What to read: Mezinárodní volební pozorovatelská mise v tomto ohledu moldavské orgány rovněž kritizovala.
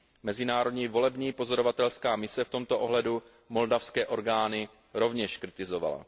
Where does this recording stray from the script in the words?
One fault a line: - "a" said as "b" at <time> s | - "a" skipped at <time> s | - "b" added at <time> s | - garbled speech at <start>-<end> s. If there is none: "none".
none